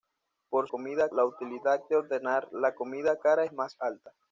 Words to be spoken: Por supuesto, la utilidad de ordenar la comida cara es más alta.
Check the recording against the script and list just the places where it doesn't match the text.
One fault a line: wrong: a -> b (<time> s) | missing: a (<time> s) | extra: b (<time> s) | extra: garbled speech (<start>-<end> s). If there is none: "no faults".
wrong: supuesto -> comida (0.7 s)